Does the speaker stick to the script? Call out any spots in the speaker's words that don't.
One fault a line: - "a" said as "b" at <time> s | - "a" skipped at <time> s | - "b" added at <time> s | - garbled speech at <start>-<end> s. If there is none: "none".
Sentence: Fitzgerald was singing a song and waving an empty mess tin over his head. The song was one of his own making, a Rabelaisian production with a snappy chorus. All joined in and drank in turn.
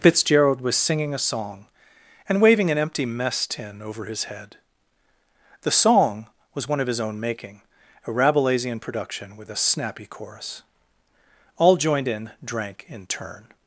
- "and" skipped at 12.3 s